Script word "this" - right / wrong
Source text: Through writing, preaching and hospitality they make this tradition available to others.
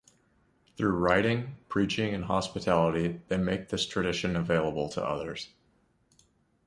right